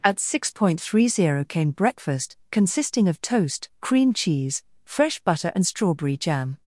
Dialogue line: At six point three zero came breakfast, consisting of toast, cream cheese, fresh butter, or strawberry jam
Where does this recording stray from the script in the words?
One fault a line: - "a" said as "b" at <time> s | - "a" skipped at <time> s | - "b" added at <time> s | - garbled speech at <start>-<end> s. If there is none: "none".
- "or" said as "and" at 5.5 s